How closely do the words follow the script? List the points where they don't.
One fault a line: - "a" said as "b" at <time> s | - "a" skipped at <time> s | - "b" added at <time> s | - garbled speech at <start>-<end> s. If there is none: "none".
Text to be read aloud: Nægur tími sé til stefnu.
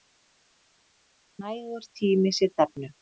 - "til" skipped at 2.5 s